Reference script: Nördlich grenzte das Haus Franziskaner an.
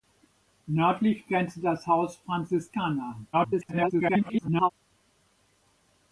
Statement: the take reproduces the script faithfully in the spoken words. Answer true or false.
false